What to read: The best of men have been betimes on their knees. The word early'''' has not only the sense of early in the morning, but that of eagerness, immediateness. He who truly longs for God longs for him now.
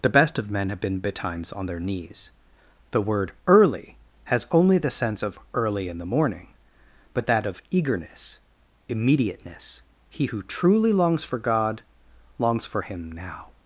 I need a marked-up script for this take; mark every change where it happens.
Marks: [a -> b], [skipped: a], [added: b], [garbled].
The best of men have been betimes on their knees. The word early'''' has [skipped: not] only the sense of early in the morning, but that of eagerness, immediateness. He who truly longs for God longs for him now.